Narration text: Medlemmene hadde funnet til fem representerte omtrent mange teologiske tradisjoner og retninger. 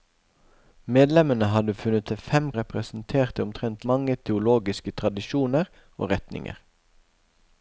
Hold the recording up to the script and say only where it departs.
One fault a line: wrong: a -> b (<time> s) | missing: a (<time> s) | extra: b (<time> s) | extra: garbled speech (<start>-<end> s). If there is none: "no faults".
no faults